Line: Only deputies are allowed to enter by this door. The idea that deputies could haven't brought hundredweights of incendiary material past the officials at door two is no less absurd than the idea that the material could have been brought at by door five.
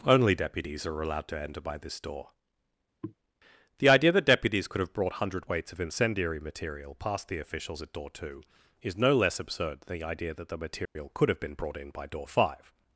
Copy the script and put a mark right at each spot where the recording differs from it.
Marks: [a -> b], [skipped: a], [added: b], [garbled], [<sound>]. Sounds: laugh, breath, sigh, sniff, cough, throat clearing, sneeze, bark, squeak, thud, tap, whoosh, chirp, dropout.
Only deputies are allowed to enter by this door. [throat clearing] The idea that deputies could [haven't -> have] brought hundredweights of incendiary material past the officials at door two is no less absurd than the idea that the material [dropout] could have been brought [at -> in] by door five.